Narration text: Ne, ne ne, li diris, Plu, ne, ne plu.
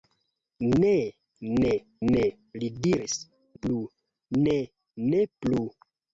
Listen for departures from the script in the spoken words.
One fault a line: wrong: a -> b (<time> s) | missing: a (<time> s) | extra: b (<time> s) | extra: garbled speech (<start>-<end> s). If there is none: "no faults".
no faults